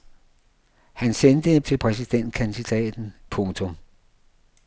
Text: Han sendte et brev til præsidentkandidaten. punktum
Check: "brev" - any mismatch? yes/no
yes